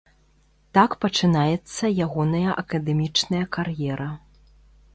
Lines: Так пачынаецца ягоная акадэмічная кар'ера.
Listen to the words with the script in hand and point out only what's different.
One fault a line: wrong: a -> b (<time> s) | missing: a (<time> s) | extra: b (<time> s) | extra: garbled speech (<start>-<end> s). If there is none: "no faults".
no faults